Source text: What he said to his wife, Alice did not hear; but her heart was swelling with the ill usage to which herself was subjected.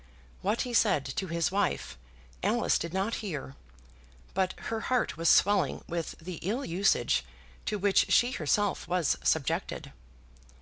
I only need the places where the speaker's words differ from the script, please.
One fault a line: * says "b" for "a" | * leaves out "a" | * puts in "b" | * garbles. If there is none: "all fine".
* puts in "she"